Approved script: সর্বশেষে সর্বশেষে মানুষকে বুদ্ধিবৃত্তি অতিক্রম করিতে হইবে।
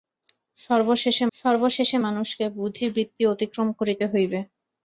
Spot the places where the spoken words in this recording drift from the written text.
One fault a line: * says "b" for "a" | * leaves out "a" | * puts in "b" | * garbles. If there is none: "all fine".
all fine